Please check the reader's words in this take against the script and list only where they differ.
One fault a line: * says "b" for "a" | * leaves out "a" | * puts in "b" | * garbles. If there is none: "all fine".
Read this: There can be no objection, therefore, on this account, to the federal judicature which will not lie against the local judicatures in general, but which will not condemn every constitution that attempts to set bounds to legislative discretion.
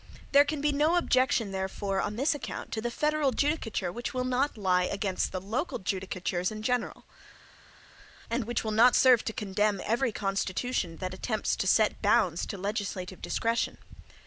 * says "and" for "but"
* puts in "serve to"